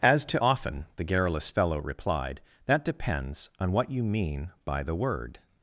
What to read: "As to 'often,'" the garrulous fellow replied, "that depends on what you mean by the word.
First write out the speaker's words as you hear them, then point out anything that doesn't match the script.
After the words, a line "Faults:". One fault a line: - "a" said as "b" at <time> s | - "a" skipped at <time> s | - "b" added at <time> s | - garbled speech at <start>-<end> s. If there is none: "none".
"As to 'often,'" the garrulous fellow replied, "that depends on what you mean by the word.
Faults:
none